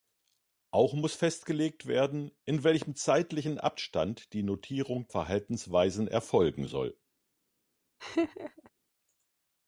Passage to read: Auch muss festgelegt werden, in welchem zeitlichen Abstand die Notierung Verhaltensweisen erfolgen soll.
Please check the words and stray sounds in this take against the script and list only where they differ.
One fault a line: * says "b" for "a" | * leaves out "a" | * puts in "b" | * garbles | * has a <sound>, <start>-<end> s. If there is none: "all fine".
* has a laugh, 8.0-8.7 s